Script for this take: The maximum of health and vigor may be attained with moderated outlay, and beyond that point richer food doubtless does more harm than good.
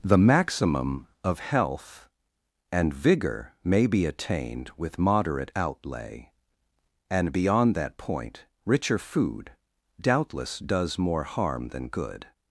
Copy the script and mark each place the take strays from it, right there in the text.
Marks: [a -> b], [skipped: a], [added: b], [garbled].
The maximum of health and vigor may be attained with [moderated -> moderate] outlay, and beyond that point richer food doubtless does more harm than good.